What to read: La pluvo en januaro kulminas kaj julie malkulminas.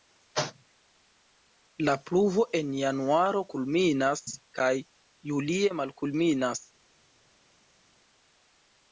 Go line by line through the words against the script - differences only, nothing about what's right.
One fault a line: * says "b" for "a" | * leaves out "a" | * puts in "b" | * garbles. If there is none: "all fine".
all fine